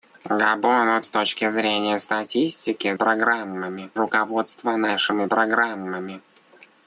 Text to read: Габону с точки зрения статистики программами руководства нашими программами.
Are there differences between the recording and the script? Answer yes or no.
no